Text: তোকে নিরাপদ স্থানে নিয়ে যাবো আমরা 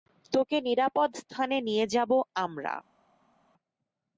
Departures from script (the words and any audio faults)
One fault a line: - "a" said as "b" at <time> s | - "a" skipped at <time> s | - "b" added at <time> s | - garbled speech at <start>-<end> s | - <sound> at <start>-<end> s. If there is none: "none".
none